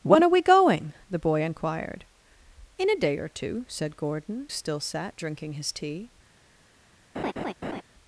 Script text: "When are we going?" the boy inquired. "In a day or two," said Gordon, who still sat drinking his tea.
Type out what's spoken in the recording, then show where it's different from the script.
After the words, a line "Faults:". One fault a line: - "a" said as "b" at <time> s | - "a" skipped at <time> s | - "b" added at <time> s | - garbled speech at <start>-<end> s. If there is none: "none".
"When are we going?" the boy inquired. "In a day or two," said Gordon, still sat drinking his tea.
Faults:
- "who" skipped at 4.5 s